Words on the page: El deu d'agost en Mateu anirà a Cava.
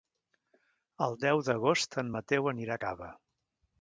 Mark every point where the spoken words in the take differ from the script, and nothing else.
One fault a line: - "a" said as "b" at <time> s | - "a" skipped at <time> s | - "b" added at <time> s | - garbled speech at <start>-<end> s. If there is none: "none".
none